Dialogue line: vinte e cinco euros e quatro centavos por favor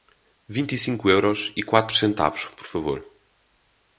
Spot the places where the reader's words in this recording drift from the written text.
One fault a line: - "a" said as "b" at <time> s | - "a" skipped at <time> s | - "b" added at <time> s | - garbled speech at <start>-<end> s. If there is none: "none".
none